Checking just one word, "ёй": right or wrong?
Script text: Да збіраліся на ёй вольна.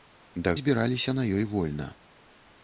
right